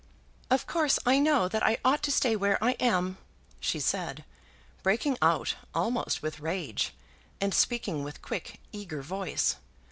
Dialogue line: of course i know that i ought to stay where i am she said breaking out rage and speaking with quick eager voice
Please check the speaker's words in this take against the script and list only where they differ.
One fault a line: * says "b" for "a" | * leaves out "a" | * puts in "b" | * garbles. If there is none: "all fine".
* puts in "almost with"